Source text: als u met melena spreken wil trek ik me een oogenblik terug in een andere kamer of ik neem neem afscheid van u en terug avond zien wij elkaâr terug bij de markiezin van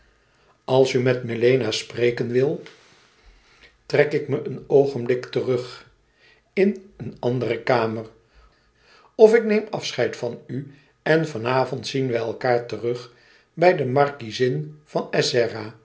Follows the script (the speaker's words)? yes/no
no